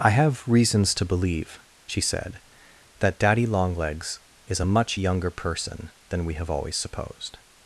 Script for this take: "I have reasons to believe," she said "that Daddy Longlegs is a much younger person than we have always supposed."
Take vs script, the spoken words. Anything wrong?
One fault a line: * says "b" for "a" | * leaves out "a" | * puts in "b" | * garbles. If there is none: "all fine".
all fine